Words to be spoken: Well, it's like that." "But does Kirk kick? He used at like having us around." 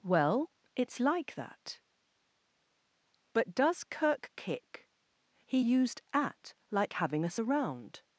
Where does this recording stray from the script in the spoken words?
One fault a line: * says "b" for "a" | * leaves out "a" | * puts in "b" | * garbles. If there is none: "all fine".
all fine